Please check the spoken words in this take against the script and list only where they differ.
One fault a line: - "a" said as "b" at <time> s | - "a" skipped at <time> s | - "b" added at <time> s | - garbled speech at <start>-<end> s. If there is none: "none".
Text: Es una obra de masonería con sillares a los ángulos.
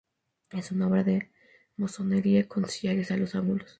none